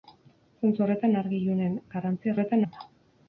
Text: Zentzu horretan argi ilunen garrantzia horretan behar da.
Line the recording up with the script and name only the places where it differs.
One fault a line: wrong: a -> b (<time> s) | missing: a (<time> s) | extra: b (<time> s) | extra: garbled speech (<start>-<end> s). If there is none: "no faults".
no faults